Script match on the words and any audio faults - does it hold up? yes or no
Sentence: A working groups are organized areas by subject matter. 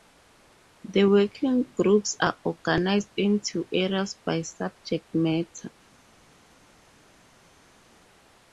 no